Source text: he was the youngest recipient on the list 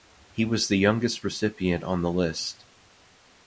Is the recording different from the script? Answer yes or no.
no